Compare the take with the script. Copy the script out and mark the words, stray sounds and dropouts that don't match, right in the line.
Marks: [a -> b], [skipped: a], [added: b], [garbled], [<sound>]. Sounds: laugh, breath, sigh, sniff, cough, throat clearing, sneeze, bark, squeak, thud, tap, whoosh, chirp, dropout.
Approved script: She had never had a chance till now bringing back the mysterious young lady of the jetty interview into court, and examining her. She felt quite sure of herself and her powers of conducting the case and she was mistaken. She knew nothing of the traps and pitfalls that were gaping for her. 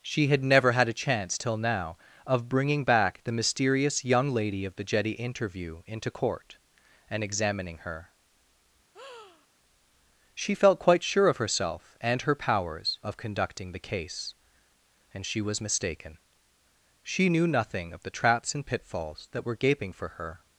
She had never had a chance till now [added: of] bringing back the mysterious young lady of the jetty interview into court, and examining her. [breath] She felt quite sure of herself and her powers of conducting the case and she was mistaken. She knew nothing of the traps and pitfalls that were gaping for her.